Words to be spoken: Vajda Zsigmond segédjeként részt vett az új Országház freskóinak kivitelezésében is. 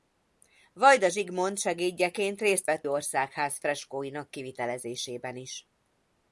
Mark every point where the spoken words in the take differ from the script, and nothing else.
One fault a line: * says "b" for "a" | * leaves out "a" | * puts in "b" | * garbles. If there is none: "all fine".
* leaves out "az új"